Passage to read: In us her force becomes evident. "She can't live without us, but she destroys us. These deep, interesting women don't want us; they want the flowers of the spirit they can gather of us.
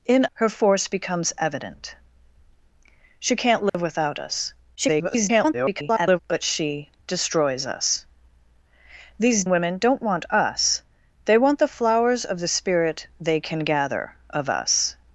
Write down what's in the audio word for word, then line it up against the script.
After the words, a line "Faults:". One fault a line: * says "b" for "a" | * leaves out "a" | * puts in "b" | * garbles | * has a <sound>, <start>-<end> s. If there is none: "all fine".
In her force becomes evident. "She can't live without us, [garbled] but she destroys us. These women don't want us; they want the flowers of the spirit they can gather of us.
Faults:
* leaves out "us"
* has a dropout, 3.7-3.7 s
* garbles
* leaves out "deep interesting"